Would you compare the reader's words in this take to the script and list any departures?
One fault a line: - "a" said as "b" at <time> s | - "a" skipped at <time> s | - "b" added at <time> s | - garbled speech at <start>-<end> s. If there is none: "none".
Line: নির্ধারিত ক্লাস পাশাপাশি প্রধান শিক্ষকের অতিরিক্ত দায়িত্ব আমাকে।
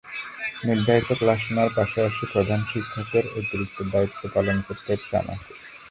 - "নেওয়ার" added at 1.5 s
- "পালন করতে হচ্ছে" added at 4.3 s